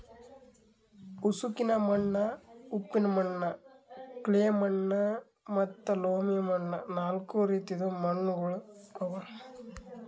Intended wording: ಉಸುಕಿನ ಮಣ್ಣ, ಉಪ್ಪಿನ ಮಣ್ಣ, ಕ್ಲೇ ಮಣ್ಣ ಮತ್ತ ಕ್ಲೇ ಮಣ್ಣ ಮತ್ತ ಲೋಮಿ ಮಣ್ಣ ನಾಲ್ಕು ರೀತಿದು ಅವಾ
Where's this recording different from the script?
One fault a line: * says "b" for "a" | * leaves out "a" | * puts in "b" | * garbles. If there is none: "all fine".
* leaves out "ಕ್ಲೇ ಮಣ್ಣ ಮತ್ತ"
* puts in "ಮಣ್ಣುಗೊಳ್"